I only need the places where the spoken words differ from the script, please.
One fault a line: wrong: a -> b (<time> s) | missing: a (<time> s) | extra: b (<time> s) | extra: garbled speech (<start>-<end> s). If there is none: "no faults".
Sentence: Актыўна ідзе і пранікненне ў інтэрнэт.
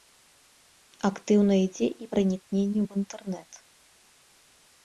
no faults